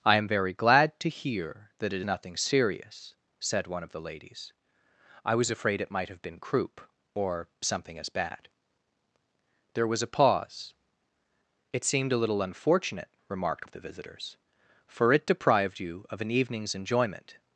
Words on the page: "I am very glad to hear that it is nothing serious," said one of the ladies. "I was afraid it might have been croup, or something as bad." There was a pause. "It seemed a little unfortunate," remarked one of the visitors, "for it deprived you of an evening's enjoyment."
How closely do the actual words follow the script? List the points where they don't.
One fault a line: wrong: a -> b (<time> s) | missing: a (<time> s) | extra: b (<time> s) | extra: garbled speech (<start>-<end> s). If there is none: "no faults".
missing: is (2.0 s)
missing: one (13.7 s)